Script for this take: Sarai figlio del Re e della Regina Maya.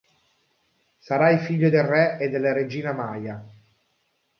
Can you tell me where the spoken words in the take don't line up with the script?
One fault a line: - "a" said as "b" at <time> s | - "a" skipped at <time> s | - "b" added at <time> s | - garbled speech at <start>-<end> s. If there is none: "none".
none